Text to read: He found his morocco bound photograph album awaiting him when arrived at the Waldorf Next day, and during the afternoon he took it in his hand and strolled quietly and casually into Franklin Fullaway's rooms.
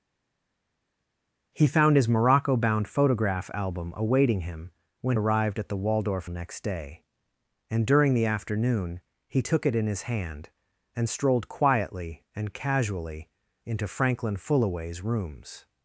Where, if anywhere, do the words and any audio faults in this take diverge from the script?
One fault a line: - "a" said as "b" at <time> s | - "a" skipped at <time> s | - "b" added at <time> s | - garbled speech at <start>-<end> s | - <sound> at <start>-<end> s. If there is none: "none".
none